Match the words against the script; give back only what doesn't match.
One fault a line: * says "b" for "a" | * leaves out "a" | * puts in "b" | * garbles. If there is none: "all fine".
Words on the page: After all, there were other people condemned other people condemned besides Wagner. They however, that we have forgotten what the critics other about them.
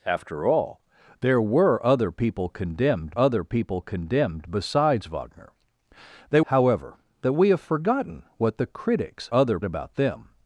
all fine